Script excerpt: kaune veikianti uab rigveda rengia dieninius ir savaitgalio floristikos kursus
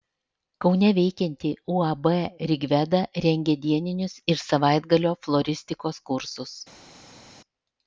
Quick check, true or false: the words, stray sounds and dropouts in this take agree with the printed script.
true